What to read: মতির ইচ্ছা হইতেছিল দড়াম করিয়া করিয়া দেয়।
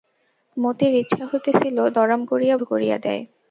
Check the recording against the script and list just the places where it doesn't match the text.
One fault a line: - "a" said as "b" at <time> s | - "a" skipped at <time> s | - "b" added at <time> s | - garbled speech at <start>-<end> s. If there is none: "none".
none